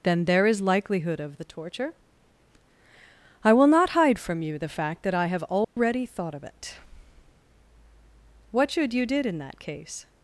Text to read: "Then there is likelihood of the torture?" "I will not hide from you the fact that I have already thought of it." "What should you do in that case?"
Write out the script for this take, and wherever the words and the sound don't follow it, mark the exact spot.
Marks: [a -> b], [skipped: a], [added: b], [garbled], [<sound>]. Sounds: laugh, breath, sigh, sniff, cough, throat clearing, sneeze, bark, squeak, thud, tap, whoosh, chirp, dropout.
"Then there is likelihood of the torture?" "I will not hide from you the fact that I have already [dropout] thought of it." "What should you [do -> did] in that case?"